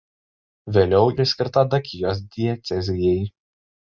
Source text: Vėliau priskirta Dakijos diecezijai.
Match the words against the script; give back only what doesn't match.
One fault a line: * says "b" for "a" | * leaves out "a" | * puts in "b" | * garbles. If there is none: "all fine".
all fine